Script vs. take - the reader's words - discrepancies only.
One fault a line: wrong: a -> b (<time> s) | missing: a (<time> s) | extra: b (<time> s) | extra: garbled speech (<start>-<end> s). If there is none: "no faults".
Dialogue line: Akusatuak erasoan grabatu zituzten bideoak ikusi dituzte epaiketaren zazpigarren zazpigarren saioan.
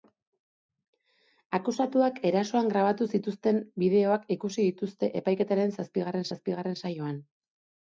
no faults